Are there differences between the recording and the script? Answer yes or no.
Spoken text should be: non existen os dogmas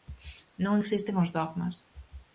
no